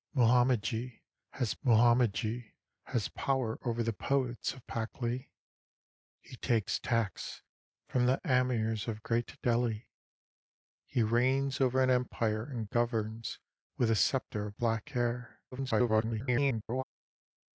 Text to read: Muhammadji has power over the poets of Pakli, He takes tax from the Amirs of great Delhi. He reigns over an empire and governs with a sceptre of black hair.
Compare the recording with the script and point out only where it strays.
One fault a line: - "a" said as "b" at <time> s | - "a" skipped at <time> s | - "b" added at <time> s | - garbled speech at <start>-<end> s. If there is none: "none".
- "muhammadji has" added at 1.6 s
- garbled speech at 15.5-16.8 s